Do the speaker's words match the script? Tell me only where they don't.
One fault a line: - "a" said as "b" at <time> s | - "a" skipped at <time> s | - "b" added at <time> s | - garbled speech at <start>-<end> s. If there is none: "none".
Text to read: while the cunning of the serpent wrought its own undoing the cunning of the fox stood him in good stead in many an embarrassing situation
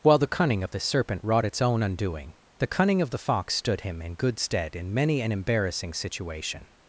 none